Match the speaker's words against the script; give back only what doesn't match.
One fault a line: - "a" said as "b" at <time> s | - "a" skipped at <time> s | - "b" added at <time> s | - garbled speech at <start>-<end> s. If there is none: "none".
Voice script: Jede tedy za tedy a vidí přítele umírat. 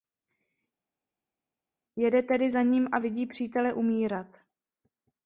- "tedy" said as "ním" at 2.6 s